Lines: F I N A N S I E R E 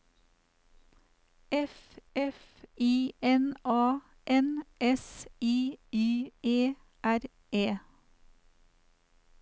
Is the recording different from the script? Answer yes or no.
yes